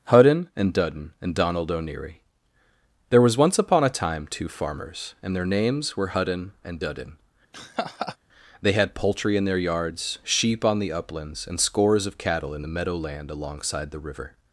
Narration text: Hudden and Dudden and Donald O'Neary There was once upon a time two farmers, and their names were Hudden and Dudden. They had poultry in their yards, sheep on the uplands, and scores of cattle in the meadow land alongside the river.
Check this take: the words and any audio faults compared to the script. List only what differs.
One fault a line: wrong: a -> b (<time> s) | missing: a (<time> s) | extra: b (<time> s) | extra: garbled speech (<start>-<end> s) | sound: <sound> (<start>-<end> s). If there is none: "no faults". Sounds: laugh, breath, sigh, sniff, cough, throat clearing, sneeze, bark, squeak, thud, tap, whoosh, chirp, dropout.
sound: laugh (7.5-8.2 s)